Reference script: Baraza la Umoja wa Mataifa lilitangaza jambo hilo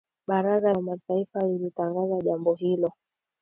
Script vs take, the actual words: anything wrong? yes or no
yes